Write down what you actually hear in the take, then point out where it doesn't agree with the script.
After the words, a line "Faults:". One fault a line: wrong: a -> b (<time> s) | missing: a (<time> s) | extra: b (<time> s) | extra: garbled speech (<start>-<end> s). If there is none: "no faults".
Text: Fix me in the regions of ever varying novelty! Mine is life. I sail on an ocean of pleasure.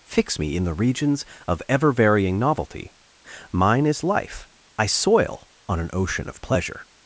Fix me in the regions of ever varying novelty! Mine is life. I soil on an ocean of pleasure.
Faults:
wrong: sail -> soil (4.9 s)